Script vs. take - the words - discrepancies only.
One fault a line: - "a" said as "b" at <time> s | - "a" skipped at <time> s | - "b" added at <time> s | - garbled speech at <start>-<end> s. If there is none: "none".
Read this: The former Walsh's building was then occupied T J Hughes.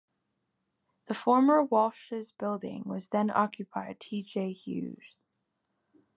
none